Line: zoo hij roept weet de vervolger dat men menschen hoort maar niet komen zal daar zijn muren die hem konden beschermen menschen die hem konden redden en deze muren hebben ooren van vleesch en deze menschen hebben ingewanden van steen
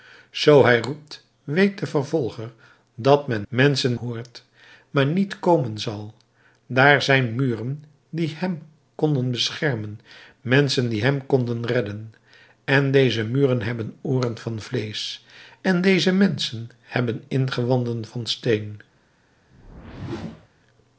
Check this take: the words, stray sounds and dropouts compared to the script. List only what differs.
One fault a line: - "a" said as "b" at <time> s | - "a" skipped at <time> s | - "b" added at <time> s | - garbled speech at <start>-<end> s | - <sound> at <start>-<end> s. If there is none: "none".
- whoosh at 19.5-20.5 s